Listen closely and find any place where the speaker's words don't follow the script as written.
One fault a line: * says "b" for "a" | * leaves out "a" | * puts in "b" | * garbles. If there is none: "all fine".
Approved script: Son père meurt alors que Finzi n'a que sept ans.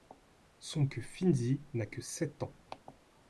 * leaves out "père meurt alors"